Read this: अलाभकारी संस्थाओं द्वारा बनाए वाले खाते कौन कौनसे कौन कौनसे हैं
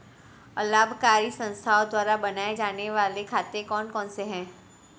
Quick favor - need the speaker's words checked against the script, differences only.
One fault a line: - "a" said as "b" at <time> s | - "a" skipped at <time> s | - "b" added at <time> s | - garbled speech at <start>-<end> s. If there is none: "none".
- "जाने" added at 2.5 s
- "कौन कौनसे" skipped at 4.2 s